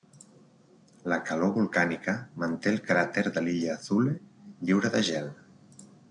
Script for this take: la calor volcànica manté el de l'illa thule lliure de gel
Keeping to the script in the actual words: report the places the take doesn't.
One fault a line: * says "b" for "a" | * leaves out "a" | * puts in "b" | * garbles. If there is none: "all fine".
* puts in "cràter"